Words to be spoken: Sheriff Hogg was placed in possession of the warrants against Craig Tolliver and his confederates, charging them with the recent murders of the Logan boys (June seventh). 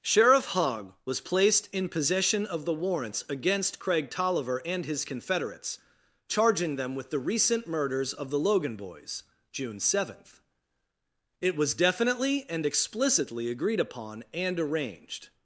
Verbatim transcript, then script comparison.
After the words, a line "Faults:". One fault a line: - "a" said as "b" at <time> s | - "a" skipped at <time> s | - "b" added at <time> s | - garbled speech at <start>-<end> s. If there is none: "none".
Sheriff Hogg was placed in possession of the warrants against Craig Tolliver and his confederates, charging them with the recent murders of the Logan boys (June seventh). It was definitely and explicitly agreed upon and arranged
Faults:
- "It was definitely and explicitly agreed upon and arranged" added at 11.4 s